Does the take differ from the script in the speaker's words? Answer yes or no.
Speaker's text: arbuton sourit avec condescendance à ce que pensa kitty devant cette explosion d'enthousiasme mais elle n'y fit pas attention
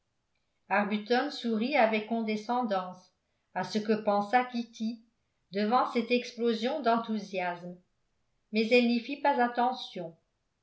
no